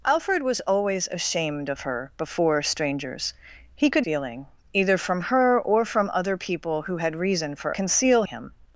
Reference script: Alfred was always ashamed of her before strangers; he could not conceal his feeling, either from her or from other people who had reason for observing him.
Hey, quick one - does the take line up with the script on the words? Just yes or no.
no